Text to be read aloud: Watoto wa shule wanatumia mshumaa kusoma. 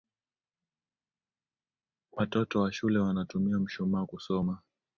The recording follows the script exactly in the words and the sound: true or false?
true